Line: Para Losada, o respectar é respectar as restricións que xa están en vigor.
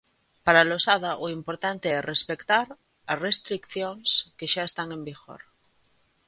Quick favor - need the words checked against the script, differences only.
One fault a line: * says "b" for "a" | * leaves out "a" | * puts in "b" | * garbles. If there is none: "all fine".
* says "importante" for "respectar"